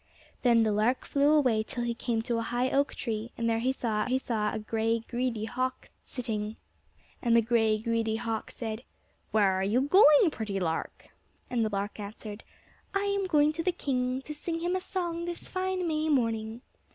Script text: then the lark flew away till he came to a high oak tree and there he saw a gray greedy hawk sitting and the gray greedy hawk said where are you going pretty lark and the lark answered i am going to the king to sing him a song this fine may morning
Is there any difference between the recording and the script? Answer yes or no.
yes